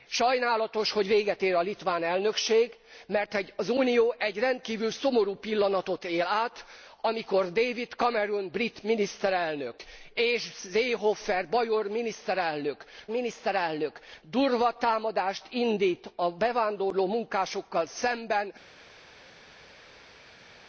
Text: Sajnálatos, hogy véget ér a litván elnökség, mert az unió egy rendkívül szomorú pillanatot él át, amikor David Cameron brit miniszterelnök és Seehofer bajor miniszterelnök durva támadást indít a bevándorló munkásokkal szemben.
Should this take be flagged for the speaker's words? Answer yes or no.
yes